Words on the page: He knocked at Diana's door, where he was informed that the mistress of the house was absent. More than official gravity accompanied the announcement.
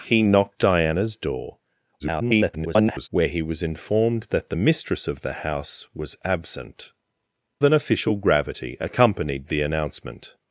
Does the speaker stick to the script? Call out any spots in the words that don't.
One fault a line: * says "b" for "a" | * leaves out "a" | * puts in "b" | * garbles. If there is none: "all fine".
* leaves out "at"
* garbles
* leaves out "More"